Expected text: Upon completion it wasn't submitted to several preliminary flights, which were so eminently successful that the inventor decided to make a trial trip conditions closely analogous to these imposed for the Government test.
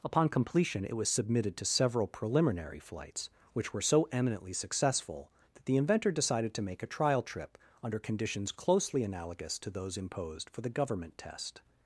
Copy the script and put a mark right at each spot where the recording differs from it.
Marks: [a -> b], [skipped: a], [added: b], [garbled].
Upon completion it [wasn't -> was] submitted to several preliminary flights, which were so eminently successful that the inventor decided to make a trial trip [added: under] conditions closely analogous to [these -> those] imposed for the Government test.